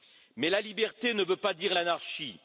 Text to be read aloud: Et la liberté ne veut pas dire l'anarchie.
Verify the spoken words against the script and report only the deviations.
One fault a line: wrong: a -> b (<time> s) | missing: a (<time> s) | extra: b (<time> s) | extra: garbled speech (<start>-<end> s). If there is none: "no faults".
wrong: Et -> Mais (0.3 s)